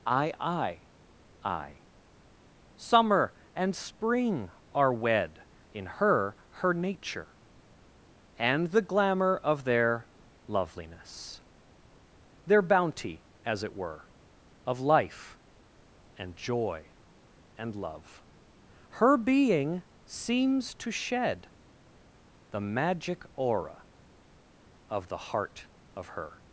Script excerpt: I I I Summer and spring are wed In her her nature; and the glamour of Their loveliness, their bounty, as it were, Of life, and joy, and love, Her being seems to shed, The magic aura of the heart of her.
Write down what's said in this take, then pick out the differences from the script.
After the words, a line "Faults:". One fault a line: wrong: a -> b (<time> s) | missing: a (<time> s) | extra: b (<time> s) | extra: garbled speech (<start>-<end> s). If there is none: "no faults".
I I I Summer and spring are wed In her her nature; and the glamour of Their loveliness, their bounty, as it were, Of life, and joy, and love, Her being seems to shed, The magic aura of the heart of her.
Faults:
no faults